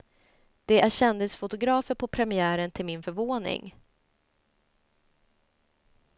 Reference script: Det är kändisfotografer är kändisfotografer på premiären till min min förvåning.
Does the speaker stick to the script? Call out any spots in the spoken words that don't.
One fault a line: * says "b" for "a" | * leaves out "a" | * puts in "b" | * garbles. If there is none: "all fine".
* leaves out "är kändisfotografer"
* leaves out "min"